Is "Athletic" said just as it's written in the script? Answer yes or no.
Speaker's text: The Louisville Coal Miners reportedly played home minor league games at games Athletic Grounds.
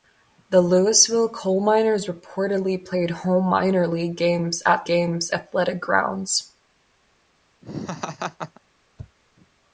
yes